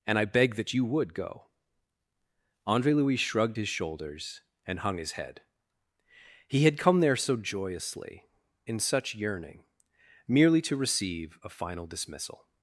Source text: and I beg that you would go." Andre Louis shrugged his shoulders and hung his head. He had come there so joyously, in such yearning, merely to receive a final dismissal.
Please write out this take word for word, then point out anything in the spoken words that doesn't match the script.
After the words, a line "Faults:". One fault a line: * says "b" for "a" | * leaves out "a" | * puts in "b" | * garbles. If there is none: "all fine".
and I beg that you would go." Andre Louis shrugged his shoulders and hung his head. He had come there so joyously, in such yearning, merely to receive a final dismissal.
Faults:
all fine